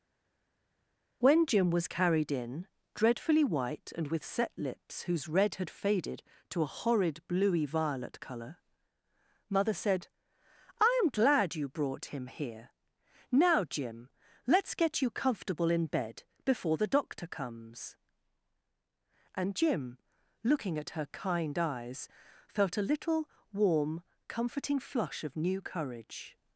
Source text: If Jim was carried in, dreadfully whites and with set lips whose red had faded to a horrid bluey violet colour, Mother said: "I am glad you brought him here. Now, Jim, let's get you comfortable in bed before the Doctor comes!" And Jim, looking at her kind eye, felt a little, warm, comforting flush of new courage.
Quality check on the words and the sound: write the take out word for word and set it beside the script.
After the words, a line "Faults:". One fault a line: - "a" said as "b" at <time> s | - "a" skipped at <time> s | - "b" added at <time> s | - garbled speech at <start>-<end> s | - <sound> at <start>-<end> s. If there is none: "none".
When Jim was carried in, dreadfully white and with set lips whose red had faded to a horrid bluey violet colour, Mother said: "I am glad you brought him here. Now, Jim, let's get you comfortable in bed before the Doctor comes!" And Jim, looking at her kind eyes, felt a little, warm, comforting flush of new courage.
Faults:
- "If" said as "When" at 1.2 s
- "whites" said as "white" at 3.4 s
- "eye" said as "eyes" at 21.6 s